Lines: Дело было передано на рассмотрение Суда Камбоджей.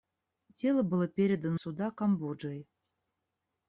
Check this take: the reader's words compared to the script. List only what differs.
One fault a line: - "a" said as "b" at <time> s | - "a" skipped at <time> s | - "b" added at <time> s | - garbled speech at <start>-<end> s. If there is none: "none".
- "на рассмотрение" skipped at 1.6 s